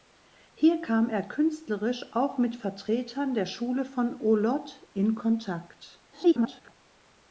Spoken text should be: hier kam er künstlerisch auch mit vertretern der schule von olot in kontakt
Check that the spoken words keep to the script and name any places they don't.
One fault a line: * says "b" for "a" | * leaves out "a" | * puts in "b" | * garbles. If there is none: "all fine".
* garbles